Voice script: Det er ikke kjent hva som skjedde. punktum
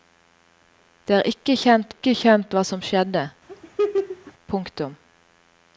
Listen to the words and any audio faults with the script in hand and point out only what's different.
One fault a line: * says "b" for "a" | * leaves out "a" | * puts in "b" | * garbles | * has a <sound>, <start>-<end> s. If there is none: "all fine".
* puts in "ikke kjent"
* has a laugh, 3.5-4.3 s